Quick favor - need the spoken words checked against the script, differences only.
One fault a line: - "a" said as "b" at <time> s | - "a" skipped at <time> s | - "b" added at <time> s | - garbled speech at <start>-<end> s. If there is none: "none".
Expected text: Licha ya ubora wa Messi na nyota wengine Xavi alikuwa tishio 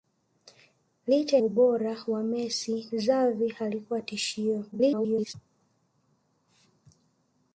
- "ya" skipped at 1.4 s
- "na nyota wengine" skipped at 2.9 s
- garbled speech at 4.7-5.3 s